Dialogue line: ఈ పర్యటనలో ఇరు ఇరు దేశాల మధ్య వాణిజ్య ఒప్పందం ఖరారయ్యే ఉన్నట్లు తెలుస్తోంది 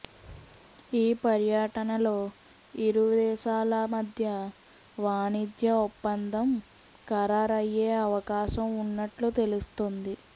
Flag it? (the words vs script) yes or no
yes